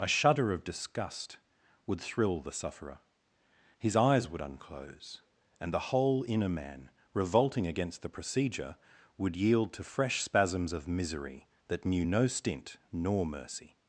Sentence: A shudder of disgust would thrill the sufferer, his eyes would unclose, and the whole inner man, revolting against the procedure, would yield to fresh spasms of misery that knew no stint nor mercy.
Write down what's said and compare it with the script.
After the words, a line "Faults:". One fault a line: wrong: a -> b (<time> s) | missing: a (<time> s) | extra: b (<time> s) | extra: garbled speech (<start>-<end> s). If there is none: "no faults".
A shudder of disgust would thrill the sufferer, his eyes would unclose, and the whole inner man, revolting against the procedure, would yield to fresh spasms of misery that knew no stint nor mercy.
Faults:
no faults